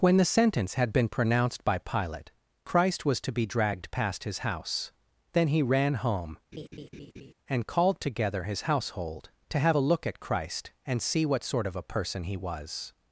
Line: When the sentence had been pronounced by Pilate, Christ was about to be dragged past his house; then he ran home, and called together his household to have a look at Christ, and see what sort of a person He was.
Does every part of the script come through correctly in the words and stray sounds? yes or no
no